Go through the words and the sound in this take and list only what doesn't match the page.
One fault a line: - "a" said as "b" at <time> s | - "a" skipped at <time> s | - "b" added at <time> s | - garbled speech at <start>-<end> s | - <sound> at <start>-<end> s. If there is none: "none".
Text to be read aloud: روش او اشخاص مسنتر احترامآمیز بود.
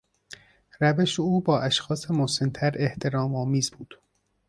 - "با" added at 1.4 s